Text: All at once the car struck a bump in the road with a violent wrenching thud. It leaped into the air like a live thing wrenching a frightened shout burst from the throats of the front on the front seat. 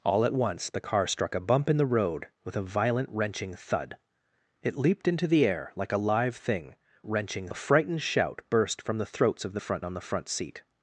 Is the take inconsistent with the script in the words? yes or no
no